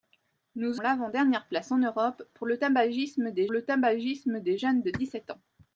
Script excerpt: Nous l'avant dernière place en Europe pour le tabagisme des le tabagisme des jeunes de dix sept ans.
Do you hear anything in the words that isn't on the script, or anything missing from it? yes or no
no